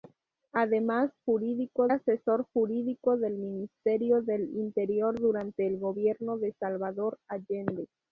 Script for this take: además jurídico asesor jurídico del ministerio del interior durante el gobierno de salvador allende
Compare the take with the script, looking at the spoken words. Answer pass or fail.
pass